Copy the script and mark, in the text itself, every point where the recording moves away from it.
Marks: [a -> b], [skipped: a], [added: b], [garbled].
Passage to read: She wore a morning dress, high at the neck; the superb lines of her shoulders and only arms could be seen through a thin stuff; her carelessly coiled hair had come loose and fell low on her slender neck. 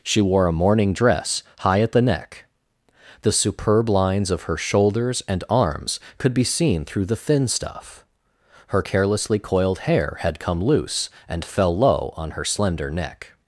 She wore a morning dress, high at the neck; the superb lines of her shoulders and [skipped: only] arms could be seen through [a -> the] thin stuff; her carelessly coiled hair had come loose and fell low on her slender neck.